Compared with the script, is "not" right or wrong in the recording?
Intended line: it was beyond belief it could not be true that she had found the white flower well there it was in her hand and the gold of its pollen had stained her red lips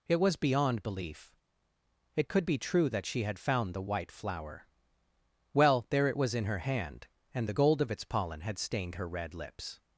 wrong